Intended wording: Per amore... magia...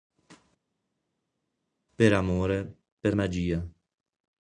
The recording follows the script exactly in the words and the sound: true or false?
false